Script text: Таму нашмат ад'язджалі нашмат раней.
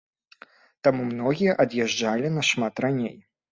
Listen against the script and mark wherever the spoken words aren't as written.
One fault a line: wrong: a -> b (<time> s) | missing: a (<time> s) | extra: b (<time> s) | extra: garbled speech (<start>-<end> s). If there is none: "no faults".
wrong: нашмат -> многія (1.1 s)